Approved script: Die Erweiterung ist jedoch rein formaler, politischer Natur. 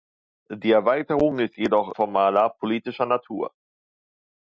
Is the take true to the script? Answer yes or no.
no